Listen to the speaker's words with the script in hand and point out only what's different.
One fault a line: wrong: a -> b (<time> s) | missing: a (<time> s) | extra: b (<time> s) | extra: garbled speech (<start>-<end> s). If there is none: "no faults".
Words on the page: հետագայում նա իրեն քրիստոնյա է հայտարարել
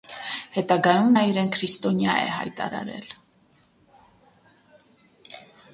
no faults